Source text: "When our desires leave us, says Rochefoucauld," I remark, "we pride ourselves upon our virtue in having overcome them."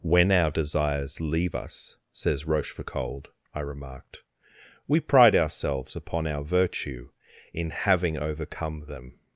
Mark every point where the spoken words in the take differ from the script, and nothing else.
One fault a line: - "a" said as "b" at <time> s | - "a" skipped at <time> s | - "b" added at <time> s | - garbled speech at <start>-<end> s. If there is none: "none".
- "remark" said as "remarked" at 3.6 s